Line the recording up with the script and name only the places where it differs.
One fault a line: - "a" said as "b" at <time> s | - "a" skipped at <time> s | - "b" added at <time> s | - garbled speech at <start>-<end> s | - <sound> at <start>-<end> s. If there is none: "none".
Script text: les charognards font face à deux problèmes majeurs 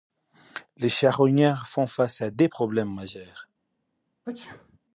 - sneeze at 4.2-4.8 s